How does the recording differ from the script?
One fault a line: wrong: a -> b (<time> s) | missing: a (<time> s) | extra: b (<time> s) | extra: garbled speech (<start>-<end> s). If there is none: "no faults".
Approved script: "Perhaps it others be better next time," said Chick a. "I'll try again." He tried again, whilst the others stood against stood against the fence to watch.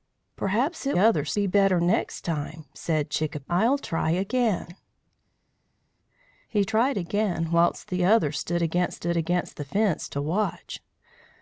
no faults